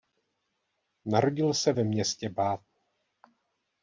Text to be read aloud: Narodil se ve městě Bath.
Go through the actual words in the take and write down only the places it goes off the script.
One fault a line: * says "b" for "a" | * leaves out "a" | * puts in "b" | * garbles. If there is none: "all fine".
all fine